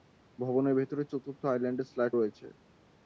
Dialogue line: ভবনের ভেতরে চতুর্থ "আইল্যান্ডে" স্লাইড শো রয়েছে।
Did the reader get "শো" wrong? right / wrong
wrong